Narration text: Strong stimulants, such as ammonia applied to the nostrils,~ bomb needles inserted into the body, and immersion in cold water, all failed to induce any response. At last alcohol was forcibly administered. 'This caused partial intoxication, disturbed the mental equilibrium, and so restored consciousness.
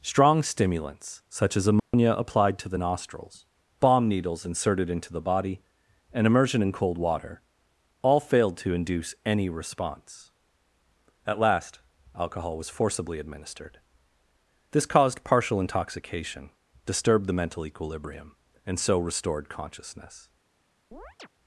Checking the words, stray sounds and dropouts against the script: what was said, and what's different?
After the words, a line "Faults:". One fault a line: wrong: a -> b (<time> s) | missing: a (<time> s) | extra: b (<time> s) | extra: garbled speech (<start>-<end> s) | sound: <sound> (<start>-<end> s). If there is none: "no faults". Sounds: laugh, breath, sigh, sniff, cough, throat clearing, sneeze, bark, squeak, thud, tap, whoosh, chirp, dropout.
Strong stimulants, such as ammonia applied to the nostrils,~ bomb needles inserted into the body, and immersion in cold water, all failed to induce any response. At last alcohol was forcibly administered. 'This caused partial intoxication, disturbed the mental equilibrium, and so restored consciousness.
Faults:
sound: dropout (1.8-1.9 s)
sound: chirp (20.9-21.3 s)